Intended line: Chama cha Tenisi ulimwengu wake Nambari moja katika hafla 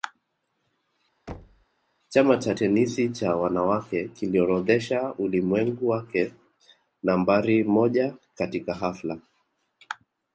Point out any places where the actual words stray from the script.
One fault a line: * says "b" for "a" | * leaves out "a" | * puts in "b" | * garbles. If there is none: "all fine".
* puts in "cha Wanawake kiliorodhesha"